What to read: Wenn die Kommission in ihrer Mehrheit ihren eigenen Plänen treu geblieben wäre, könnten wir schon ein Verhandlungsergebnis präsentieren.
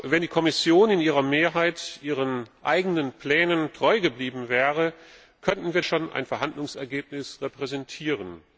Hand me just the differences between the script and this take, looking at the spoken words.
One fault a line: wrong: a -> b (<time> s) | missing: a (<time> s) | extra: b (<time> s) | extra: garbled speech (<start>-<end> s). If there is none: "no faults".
no faults